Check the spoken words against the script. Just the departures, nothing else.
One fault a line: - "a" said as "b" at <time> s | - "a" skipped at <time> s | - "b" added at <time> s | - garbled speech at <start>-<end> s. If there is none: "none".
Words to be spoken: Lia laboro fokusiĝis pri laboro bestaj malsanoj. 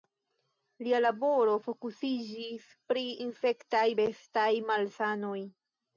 - "laboro" said as "infektaj" at 3.3 s